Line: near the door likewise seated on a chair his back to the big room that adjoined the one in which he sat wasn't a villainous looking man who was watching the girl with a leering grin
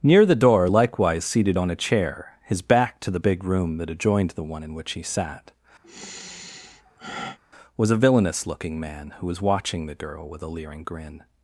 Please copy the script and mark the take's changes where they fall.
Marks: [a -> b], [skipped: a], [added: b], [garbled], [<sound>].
near the door likewise seated on a chair his back to the big room that adjoined the one in which he sat [sigh] [wasn't -> was] a villainous looking man who was watching the girl with a leering grin